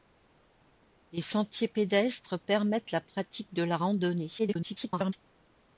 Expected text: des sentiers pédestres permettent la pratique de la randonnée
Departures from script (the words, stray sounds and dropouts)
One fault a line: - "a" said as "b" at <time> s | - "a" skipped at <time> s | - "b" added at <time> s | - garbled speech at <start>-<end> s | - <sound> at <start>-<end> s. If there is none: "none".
- garbled speech at 4.4-5.1 s